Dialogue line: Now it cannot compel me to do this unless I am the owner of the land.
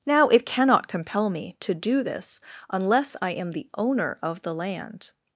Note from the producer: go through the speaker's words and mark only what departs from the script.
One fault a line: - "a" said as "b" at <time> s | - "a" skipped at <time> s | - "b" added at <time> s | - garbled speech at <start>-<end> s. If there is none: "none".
none